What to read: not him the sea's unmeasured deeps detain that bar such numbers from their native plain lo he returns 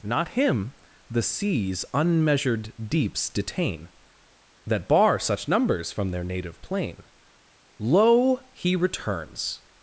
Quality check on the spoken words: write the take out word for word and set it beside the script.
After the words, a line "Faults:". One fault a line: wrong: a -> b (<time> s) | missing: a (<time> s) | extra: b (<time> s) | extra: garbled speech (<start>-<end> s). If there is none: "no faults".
not him the sea's unmeasured deeps detain that bar such numbers from their native plain lo he returns
Faults:
no faults